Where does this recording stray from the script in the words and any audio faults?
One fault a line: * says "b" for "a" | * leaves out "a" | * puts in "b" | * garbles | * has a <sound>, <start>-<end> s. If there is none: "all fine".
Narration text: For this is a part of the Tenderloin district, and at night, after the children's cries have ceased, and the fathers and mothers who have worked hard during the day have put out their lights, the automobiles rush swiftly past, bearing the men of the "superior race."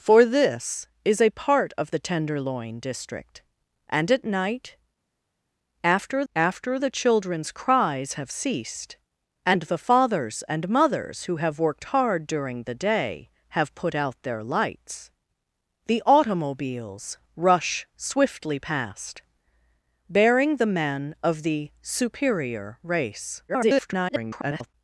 * puts in "after"
* garbles